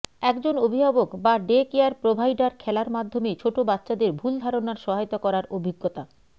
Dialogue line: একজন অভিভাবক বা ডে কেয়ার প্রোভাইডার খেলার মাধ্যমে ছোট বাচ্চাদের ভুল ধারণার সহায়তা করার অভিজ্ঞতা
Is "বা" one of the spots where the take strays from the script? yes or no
no